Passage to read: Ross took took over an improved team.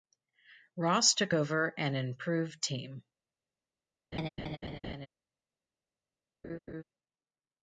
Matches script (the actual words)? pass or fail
fail